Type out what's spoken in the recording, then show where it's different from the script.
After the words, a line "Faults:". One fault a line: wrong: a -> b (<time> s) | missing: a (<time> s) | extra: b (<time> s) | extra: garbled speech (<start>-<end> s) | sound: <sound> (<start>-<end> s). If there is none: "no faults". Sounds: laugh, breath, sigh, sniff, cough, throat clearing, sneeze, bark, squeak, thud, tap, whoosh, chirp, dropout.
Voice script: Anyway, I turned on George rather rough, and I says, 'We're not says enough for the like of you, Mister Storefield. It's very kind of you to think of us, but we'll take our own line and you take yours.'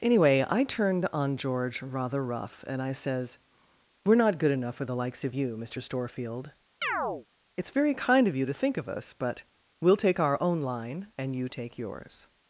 Anyway, I turned on George rather rough, and I says, 'We're not good enough for the likes of you, Mister Storefield. It's very kind of you to think of us, but we'll take our own line and you take yours.'
Faults:
wrong: says -> good (4.4 s)
wrong: like -> likes (4.9 s)
sound: chirp (6.8-7.3 s)